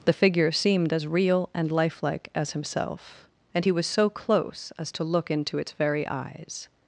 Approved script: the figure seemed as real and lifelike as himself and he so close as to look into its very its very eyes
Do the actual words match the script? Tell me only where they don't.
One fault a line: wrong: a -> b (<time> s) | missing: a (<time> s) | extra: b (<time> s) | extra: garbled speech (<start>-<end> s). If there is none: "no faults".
extra: was (3.7 s)
missing: its very (6.1 s)